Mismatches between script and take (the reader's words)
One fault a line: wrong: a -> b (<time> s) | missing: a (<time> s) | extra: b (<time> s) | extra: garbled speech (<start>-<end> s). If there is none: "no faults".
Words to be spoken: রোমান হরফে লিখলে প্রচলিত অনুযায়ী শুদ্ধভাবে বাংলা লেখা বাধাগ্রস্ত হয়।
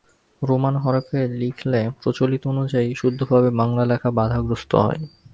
no faults